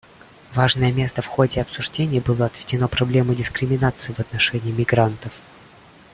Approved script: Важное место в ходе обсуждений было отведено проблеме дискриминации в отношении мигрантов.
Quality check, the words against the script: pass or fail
pass